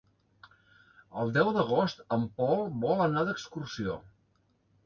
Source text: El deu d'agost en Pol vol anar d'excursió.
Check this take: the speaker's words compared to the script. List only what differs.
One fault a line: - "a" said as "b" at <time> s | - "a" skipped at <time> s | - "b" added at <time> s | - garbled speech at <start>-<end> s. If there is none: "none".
none